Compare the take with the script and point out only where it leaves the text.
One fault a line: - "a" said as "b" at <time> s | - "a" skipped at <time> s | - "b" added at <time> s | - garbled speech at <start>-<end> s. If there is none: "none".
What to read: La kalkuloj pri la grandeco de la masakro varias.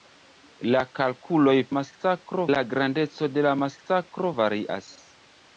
- "pri" said as "masakro" at 1.8 s